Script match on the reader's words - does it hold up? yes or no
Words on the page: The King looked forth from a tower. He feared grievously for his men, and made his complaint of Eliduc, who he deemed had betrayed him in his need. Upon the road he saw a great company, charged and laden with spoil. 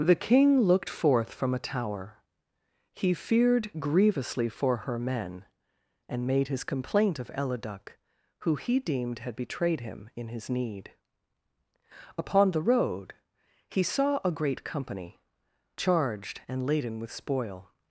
no